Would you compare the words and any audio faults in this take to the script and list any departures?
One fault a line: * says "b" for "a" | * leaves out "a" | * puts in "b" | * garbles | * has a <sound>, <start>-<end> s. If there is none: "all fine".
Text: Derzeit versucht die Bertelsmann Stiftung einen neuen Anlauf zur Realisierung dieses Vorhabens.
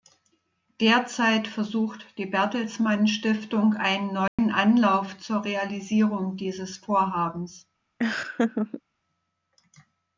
* has a dropout, 4.3-4.4 s
* has a laugh, 8.0-8.8 s